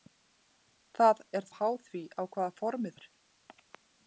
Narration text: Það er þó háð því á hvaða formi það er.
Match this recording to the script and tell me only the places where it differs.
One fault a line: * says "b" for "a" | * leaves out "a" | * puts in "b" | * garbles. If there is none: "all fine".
* leaves out "þó"
* leaves out "það"